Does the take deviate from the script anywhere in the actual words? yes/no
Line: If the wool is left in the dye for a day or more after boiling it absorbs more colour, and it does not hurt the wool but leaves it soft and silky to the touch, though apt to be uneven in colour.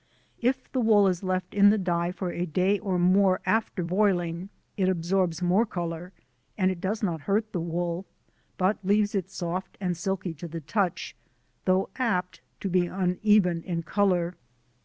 no